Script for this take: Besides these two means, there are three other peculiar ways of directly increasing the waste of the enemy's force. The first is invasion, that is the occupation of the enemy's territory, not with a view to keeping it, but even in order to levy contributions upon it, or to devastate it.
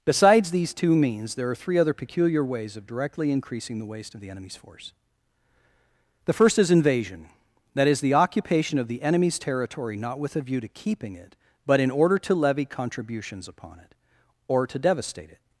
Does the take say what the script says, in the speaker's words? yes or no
no